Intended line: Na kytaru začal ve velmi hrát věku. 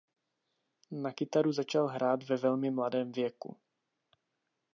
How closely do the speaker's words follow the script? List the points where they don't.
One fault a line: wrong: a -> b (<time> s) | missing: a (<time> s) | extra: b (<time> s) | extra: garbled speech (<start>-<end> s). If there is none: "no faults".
extra: hrát (1.9 s)
wrong: hrát -> mladém (2.7 s)